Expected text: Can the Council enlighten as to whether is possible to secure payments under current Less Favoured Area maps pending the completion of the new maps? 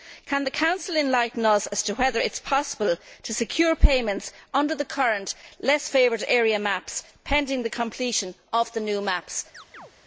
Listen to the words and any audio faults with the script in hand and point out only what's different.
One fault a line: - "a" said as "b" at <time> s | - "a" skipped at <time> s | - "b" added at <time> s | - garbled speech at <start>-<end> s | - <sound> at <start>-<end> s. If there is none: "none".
- "us" added at 1.4 s
- "it" added at 2.2 s
- "the" added at 4.7 s
- chirp at 9.5-9.9 s